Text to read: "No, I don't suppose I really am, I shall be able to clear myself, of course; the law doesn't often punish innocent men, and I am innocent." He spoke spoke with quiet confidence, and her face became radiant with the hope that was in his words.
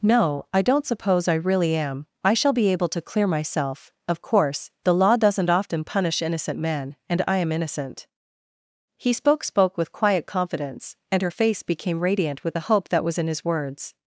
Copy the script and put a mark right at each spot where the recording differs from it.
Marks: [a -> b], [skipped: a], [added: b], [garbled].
"No, I don't suppose I really am, I shall be able to clear myself, of course; the law doesn't often punish innocent men, and I am innocent." He spoke spoke with quiet confidence, and her face became radiant with the hope that was in his words.